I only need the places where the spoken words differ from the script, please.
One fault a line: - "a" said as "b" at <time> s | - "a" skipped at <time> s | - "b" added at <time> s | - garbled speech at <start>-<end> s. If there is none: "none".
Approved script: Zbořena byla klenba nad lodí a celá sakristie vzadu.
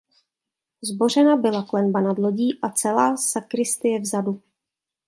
none